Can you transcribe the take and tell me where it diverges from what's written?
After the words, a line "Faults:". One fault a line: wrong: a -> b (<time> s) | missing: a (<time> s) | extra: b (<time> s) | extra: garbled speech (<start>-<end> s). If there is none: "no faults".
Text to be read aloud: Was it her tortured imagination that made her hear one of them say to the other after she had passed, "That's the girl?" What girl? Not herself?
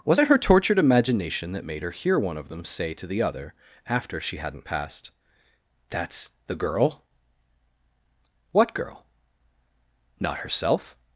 Was it her tortured imagination that made her hear one of them say to the other after she hadn't passed, "That's the girl?" What girl? Not herself?
Faults:
wrong: had -> hadn't (4.4 s)